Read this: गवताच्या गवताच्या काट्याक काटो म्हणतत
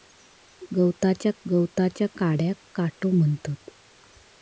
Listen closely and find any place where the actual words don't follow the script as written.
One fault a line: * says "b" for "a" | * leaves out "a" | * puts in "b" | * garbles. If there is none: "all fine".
all fine